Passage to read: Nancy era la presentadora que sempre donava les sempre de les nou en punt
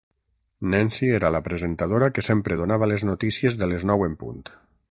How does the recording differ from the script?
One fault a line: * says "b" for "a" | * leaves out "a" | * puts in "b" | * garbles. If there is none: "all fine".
* says "notícies" for "sempre"